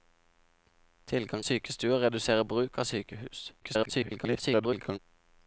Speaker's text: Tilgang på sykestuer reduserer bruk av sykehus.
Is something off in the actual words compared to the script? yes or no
yes